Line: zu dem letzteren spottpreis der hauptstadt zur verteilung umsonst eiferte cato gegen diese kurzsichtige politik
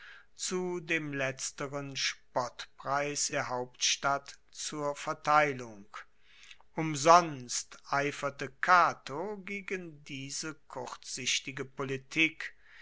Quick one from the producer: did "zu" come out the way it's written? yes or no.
yes